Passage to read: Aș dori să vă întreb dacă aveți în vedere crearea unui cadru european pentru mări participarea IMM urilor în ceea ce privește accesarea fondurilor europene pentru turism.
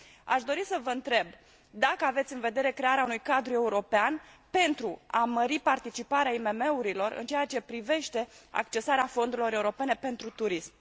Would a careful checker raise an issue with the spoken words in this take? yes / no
yes